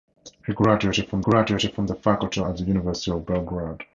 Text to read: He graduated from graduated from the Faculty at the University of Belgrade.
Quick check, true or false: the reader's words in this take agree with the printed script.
true